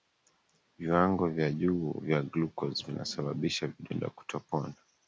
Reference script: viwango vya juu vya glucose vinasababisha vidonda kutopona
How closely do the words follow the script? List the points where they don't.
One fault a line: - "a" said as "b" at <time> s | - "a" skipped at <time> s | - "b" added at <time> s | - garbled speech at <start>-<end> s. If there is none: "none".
none